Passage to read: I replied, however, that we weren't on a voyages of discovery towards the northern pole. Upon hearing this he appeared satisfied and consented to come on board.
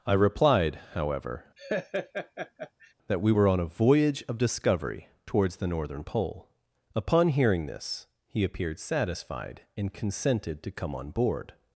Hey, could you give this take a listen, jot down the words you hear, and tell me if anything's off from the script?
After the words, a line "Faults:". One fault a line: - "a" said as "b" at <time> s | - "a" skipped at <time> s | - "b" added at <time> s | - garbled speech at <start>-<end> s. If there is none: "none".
I replied, however, that we were on a voyage of discovery towards the northern pole. Upon hearing this he appeared satisfied and consented to come on board.
Faults:
- "weren't" said as "were" at 3.3 s
- "voyages" said as "voyage" at 3.7 s